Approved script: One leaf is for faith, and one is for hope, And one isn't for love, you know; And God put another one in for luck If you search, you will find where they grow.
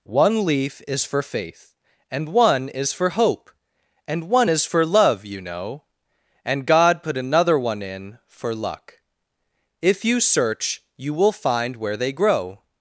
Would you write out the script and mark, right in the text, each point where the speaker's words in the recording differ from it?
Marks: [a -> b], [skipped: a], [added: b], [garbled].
One leaf is for faith, and one is for hope, And one [isn't -> is] for love, you know; And God put another one in for luck If you search, you will find where they grow.